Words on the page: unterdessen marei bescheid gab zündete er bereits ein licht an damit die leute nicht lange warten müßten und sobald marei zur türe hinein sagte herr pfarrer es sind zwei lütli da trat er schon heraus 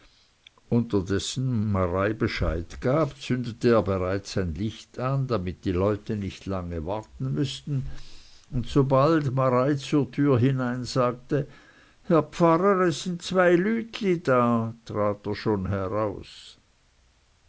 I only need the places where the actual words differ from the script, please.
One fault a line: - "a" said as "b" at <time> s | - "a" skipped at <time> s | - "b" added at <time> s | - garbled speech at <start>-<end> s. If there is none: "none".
none